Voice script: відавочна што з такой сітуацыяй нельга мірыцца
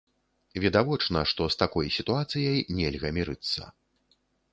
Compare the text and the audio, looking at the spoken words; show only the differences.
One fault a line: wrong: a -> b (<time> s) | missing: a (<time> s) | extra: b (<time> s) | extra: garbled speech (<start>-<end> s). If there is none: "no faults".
no faults